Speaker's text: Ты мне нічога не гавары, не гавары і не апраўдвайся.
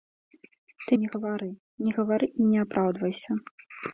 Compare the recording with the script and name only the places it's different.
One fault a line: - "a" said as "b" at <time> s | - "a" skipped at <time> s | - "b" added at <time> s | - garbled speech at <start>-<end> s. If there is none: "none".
- "мне нічога" skipped at 0.9 s